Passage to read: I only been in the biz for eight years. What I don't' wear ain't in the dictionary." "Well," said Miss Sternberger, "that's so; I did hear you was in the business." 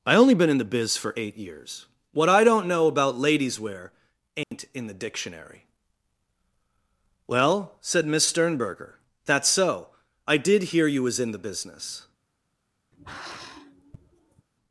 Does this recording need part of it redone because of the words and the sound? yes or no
yes